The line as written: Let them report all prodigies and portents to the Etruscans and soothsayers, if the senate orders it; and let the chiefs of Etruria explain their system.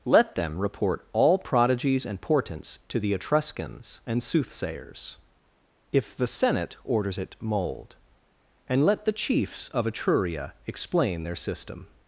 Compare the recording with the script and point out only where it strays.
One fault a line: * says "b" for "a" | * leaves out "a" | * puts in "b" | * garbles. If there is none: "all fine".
* puts in "mold"